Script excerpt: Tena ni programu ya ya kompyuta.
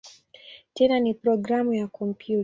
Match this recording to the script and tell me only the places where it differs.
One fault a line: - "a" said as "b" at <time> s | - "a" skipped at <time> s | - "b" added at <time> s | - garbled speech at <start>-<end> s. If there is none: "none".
- "ya" skipped at 1.9 s